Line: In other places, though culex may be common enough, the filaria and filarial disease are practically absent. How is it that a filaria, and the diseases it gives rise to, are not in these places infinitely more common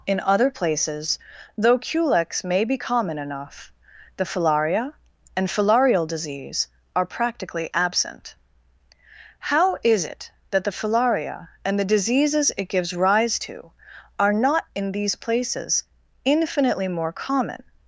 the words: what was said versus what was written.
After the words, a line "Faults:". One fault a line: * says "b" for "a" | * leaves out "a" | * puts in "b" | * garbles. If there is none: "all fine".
In other places, though culex may be common enough, the filaria and filarial disease are practically absent. How is it that the filaria, and the diseases it gives rise to, are not in these places infinitely more common
Faults:
* says "the" for "a"